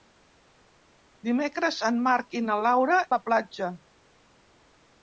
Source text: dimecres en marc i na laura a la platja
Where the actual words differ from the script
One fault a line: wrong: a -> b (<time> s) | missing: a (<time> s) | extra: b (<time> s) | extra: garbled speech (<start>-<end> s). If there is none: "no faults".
no faults